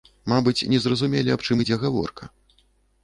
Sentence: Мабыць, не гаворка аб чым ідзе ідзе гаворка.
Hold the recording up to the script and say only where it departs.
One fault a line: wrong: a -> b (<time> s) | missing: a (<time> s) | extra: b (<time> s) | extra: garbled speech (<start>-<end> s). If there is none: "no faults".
wrong: гаворка -> зразумелі (0.8 s)
missing: ідзе (1.8 s)